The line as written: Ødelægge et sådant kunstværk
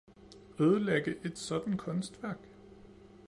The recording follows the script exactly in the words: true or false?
true